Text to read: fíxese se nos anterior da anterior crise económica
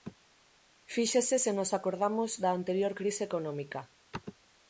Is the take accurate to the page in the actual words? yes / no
no